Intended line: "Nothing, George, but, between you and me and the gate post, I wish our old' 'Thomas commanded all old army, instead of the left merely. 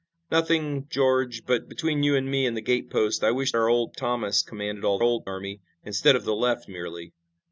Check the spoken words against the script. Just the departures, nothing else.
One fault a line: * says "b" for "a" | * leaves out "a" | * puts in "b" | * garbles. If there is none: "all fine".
all fine